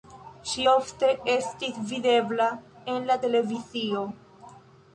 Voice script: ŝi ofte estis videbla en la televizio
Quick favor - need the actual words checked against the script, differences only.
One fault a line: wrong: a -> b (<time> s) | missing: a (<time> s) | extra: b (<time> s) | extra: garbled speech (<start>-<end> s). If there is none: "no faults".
no faults